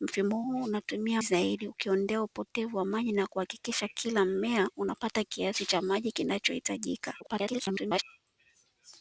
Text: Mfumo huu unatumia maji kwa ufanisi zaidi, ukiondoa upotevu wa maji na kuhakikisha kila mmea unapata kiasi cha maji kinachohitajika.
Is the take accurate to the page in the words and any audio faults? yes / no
no